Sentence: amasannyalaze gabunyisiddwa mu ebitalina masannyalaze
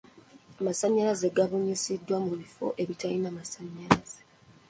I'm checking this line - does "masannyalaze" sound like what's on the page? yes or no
yes